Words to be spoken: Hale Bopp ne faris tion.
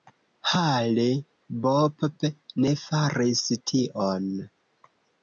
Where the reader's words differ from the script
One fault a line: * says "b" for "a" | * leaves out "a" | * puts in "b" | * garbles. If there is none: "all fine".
all fine